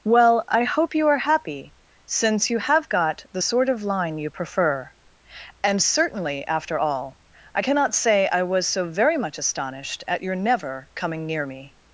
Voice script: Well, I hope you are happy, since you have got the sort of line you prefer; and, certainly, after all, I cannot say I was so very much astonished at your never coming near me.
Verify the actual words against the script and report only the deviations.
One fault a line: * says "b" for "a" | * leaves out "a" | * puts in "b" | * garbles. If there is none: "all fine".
all fine